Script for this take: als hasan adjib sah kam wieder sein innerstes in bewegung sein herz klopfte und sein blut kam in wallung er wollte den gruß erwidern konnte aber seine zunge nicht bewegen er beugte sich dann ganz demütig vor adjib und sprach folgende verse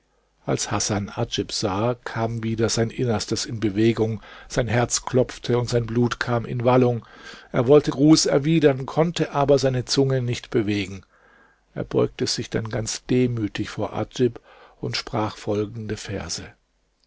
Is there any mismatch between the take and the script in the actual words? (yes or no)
yes